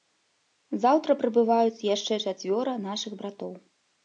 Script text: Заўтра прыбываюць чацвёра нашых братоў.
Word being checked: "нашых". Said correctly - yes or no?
yes